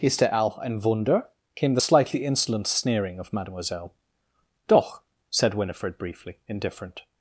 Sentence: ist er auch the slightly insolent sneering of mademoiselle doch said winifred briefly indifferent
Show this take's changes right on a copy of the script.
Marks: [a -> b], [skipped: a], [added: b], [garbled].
ist er auch [added: ein wunder came] the slightly insolent sneering of mademoiselle doch said winifred briefly indifferent